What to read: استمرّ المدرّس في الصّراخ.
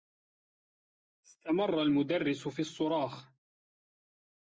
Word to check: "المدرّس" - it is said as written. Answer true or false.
true